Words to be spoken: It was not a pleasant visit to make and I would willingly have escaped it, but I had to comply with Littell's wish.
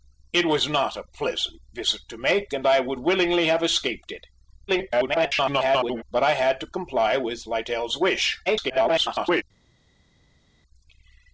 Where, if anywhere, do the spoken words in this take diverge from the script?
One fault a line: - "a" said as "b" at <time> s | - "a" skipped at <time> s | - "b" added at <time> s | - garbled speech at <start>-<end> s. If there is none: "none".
- garbled speech at 4.7-6.0 s
- garbled speech at 8.5-9.4 s